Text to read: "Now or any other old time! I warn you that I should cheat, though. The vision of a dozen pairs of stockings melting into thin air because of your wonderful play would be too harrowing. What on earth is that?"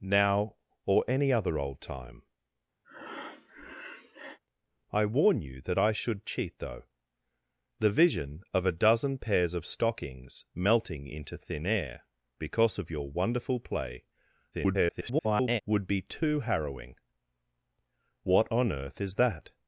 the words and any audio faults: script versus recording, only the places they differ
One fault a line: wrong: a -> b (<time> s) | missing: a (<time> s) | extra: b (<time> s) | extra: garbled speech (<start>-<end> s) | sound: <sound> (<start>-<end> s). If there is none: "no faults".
sound: breath (2.8-4.4 s)
extra: garbled speech (14.5-15.6 s)